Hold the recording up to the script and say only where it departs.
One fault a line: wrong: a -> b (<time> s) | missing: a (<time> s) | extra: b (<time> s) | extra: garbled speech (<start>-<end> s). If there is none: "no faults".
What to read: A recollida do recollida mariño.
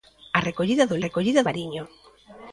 no faults